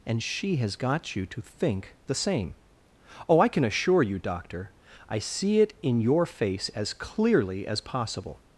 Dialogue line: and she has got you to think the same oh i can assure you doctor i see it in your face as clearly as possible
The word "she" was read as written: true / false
true